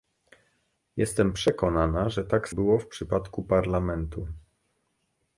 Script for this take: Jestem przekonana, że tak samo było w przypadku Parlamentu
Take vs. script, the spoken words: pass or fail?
fail